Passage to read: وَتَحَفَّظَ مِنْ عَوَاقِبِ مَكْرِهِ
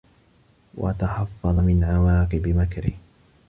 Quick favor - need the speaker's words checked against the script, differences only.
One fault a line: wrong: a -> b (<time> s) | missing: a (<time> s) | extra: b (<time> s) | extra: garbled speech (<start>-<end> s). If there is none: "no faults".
no faults